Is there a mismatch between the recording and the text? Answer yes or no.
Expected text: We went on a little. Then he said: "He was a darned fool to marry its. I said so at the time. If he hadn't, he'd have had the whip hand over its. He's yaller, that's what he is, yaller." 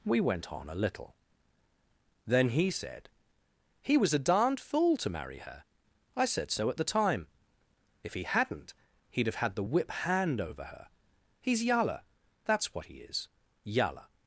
yes